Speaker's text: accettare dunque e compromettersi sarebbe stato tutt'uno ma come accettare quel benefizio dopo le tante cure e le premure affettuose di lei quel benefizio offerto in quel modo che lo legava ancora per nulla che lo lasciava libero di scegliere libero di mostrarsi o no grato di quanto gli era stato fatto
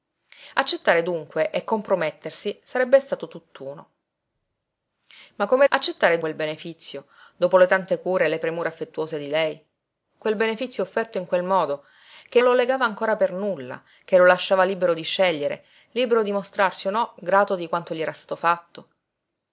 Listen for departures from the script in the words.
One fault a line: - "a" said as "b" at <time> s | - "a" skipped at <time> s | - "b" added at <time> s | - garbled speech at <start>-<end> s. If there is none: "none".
none